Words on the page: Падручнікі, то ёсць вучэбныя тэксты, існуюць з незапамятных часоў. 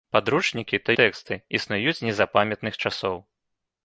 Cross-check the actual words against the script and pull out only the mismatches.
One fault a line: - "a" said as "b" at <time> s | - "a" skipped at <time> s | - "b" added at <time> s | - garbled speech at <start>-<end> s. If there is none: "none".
- "ёсць вучэбныя" skipped at 0.9 s